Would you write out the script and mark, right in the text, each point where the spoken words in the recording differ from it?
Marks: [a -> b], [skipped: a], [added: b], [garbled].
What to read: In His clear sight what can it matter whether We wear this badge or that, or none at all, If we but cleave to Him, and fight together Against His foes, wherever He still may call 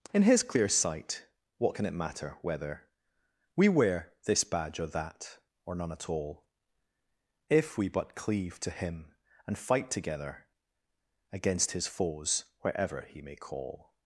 In His clear sight what can it matter whether We wear this badge or that, or none at all, If we but cleave to Him, and fight together Against His foes, wherever He [skipped: still] may call